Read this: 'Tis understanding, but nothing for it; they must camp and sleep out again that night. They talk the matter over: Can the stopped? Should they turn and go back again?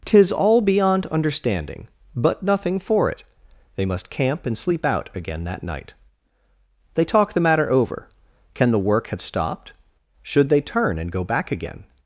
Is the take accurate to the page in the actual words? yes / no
no